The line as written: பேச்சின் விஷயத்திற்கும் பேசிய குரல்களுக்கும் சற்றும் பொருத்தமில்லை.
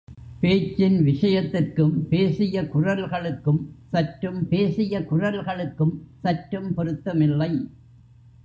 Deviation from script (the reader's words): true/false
true